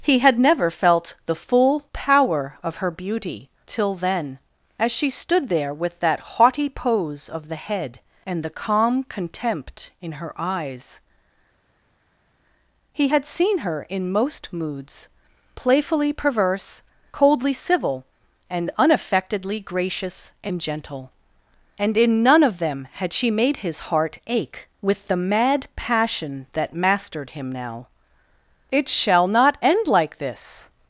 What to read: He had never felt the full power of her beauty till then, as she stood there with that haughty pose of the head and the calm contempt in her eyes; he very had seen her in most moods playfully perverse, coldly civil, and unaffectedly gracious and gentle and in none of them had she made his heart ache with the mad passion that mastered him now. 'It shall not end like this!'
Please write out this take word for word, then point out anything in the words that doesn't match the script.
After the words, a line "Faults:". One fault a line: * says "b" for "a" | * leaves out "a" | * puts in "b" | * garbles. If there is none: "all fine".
He had never felt the full power of her beauty till then, as she stood there with that haughty pose of the head and the calm contempt in her eyes; he had seen her in most moods playfully perverse, coldly civil, and unaffectedly gracious and gentle and in none of them had she made his heart ache with the mad passion that mastered him now. 'It shall not end like this!'
Faults:
* leaves out "very"